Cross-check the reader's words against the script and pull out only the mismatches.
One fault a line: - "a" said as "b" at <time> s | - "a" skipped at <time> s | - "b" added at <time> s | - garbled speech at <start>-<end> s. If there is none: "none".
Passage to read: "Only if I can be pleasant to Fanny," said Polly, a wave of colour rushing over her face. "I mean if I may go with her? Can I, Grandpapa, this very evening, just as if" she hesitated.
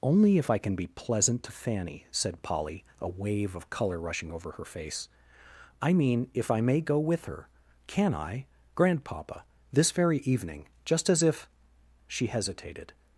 none